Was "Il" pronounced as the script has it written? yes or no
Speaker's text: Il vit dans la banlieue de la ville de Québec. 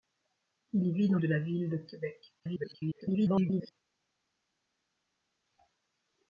yes